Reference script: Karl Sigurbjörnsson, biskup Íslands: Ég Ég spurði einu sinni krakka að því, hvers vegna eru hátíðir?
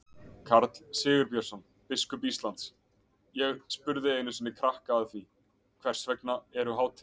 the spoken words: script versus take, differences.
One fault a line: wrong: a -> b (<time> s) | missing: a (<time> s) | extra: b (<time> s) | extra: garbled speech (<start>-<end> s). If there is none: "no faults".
missing: Ég (3.6 s)